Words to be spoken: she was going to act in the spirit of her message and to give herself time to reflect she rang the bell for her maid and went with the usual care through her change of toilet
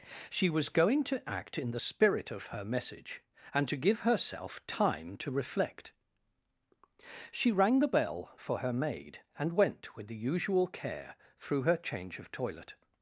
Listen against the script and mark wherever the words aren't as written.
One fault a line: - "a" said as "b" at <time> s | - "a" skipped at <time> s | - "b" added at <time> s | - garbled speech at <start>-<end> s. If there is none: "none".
none